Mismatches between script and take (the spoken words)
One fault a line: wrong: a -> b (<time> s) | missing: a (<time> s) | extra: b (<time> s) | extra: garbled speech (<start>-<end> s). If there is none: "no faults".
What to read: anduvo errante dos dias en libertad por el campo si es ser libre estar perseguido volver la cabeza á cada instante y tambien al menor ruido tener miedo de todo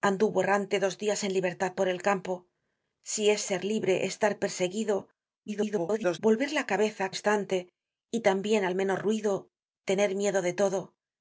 extra: garbled speech (5.5-6.2 s)
missing: cada (7.1 s)